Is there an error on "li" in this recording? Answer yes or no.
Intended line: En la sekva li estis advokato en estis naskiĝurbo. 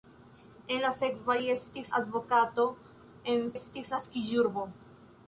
no